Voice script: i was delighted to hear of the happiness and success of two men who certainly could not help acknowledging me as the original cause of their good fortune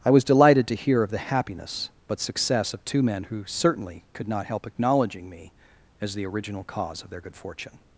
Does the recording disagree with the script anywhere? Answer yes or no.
yes